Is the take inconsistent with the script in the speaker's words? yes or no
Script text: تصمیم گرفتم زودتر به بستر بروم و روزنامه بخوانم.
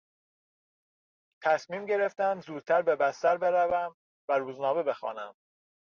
no